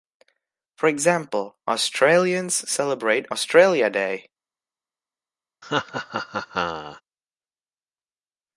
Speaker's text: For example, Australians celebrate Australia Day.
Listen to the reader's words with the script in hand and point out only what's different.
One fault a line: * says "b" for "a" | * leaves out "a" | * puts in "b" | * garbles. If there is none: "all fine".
all fine